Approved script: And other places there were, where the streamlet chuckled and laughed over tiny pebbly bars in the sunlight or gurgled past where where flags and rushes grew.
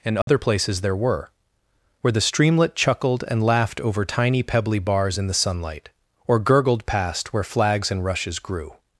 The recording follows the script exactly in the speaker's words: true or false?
false